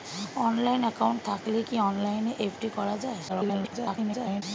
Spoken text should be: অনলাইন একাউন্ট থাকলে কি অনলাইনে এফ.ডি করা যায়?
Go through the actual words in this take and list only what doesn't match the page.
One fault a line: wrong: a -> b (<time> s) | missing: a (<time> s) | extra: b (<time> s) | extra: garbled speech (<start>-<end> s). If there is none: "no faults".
extra: garbled speech (3.3-4.4 s)